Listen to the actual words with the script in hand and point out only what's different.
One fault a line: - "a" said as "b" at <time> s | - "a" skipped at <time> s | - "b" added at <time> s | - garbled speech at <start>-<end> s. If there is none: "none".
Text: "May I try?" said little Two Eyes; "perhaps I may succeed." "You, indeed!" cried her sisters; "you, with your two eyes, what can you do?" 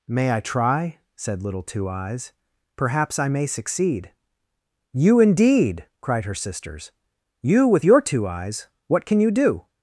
none